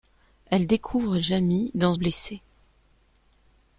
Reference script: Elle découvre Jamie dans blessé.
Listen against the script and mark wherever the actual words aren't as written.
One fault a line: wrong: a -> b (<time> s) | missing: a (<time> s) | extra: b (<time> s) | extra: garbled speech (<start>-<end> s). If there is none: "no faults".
no faults